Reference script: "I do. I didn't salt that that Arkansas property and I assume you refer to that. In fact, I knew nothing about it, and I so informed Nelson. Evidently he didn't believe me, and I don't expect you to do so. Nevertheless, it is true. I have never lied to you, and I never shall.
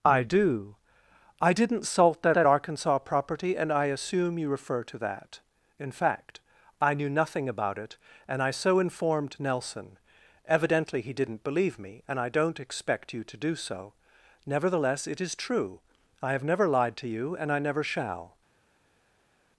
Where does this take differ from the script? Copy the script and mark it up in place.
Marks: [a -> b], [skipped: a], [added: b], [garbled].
"I do. I didn't salt that that Arkansas property and I assume you refer to that. In fact, I knew nothing about it, and I so informed Nelson. Evidently he didn't believe me, and I don't expect you to do so. Nevertheless, it is true. I have never lied to you, and I never shall.